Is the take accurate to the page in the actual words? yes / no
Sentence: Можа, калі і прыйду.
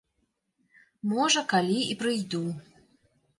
yes